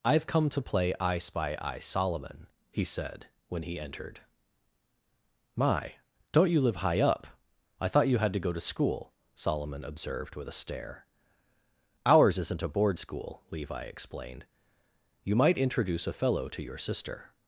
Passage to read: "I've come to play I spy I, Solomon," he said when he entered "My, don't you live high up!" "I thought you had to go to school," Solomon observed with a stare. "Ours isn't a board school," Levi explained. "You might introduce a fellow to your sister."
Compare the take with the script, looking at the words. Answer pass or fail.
pass